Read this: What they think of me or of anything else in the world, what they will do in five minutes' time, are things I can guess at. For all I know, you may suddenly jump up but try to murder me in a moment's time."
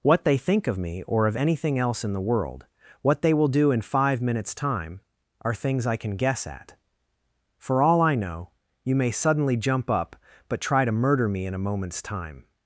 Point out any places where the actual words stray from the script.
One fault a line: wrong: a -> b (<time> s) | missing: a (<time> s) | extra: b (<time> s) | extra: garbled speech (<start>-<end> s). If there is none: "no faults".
no faults